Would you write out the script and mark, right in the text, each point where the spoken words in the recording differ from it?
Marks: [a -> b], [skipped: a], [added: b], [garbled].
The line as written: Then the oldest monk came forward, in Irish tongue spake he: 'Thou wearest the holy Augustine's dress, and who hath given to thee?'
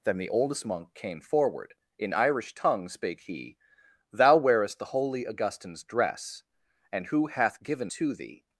Then the oldest monk came forward, in Irish tongue spake he: 'Thou wearest the holy Augustine's dress, and who hath given to thee?'